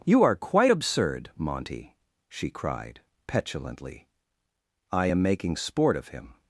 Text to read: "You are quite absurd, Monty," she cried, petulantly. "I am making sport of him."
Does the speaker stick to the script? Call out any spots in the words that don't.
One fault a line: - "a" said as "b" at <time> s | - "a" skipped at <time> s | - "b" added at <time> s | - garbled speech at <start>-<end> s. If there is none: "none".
none